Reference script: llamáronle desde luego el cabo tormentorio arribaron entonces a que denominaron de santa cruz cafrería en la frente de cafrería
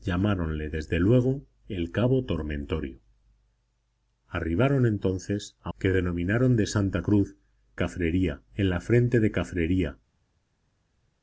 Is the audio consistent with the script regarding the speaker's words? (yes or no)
yes